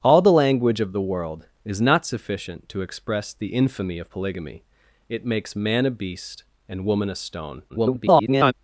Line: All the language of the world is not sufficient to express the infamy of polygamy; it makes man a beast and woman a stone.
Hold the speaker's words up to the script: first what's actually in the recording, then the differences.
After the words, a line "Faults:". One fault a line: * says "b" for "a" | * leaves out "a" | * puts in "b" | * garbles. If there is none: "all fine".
All the language of the world is not sufficient to express the infamy of polygamy; it makes man a beast and woman a stone. [garbled]
Faults:
* garbles